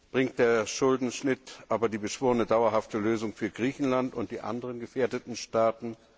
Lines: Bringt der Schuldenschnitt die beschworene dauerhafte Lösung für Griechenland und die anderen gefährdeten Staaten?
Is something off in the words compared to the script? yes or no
yes